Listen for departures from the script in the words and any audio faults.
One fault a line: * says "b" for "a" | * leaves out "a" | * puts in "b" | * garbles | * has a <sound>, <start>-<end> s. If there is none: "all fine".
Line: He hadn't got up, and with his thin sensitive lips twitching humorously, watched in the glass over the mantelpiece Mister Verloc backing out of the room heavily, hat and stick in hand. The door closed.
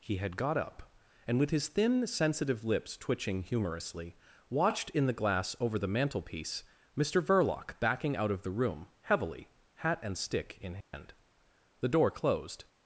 * says "had" for "hadn't"
* has a dropout, 10.8-10.9 s